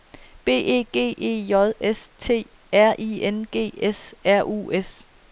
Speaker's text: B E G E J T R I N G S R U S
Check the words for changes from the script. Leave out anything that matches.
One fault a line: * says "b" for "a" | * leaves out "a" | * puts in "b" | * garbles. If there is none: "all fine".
* puts in "S"